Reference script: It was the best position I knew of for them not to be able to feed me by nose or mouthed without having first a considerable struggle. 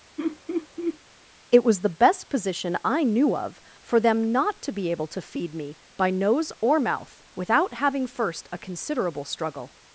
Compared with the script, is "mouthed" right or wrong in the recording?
wrong